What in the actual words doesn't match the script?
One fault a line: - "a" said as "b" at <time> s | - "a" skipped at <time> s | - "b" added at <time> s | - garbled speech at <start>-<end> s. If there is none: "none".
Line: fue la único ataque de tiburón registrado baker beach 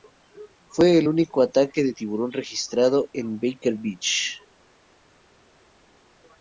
- "la" said as "el" at 1.0 s
- "en" added at 3.1 s